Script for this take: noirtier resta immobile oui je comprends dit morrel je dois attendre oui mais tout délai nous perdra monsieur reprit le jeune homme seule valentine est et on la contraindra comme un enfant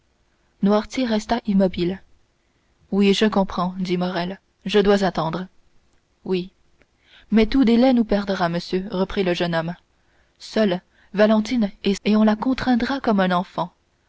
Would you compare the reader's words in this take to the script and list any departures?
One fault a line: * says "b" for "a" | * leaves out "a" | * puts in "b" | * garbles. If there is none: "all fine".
all fine